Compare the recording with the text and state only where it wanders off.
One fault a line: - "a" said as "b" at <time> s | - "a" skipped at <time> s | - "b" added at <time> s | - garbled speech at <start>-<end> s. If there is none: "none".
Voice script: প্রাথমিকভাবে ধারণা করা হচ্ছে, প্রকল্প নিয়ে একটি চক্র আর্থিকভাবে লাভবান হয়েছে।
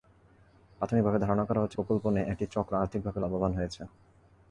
none